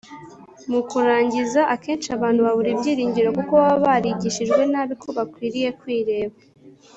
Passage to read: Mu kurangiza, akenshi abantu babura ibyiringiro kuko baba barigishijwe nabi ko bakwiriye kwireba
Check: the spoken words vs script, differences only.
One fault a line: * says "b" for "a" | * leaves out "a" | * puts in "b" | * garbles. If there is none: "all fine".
all fine